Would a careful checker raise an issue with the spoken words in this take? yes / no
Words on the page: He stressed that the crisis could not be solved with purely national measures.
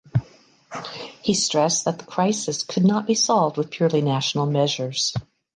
no